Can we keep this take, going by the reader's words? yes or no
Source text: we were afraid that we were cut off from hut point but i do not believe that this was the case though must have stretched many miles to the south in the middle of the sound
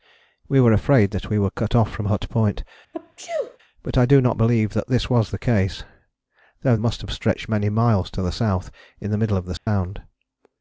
yes